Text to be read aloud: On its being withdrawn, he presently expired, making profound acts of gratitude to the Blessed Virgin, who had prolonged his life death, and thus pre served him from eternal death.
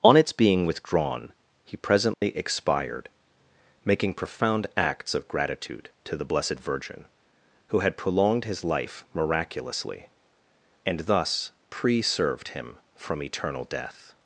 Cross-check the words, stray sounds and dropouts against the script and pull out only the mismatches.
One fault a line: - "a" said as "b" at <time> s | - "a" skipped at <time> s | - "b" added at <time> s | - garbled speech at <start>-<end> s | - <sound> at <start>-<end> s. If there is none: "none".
- dropout at 2.1-2.2 s
- "death" said as "miraculously" at 9.1 s